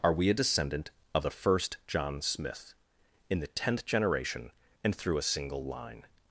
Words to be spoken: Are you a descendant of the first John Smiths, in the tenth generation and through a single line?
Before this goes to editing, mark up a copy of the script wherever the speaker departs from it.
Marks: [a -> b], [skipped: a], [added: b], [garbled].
Are [you -> we] a descendant of the first John [Smiths, -> Smith] in the tenth generation and through a single line?